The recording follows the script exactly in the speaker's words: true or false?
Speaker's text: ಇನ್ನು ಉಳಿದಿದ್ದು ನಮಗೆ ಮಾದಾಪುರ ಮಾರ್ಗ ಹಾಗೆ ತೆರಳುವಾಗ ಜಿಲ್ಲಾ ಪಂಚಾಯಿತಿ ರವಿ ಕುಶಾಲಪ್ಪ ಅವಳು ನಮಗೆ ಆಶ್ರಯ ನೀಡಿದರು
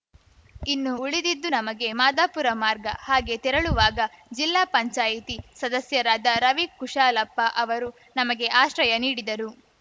false